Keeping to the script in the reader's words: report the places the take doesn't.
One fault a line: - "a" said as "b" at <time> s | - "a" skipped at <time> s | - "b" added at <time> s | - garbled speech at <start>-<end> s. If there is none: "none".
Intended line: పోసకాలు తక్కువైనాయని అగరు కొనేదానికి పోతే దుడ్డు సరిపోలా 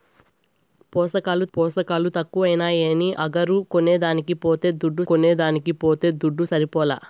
- "పోసకాలు" added at 1.5 s
- "కొనేదానికి పోతే దుడ్డు" added at 5.1 s